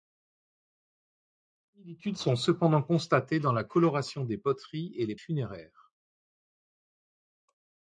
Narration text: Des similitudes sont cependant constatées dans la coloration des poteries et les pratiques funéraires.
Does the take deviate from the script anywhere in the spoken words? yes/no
yes